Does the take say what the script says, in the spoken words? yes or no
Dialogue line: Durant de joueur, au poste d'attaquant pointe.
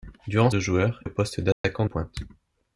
yes